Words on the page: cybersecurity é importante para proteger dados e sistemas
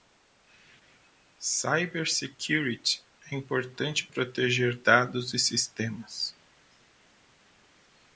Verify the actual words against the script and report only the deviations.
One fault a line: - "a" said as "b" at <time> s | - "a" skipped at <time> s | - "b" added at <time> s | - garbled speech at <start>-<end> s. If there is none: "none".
- "para" skipped at 4.1 s